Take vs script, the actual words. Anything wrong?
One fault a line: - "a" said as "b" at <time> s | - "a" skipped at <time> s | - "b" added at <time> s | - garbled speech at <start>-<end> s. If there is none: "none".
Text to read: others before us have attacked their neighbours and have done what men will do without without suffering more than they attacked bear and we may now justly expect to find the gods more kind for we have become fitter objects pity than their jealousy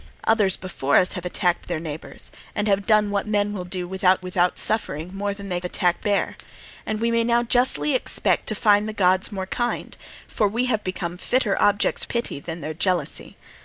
none